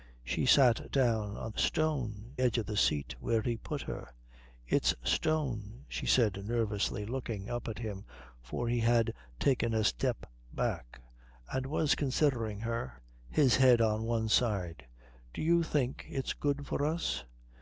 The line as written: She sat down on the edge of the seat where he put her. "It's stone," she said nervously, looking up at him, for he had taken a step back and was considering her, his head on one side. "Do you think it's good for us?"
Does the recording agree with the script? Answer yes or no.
no